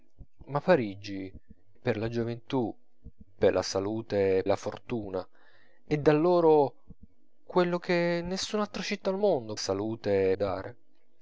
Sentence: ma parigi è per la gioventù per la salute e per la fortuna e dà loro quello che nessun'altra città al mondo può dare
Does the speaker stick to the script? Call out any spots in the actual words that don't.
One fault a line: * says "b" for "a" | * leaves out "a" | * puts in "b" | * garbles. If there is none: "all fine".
* leaves out "è"
* leaves out "per"
* says "salute" for "può"